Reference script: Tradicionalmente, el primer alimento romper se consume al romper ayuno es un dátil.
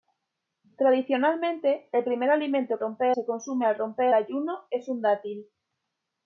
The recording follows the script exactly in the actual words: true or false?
true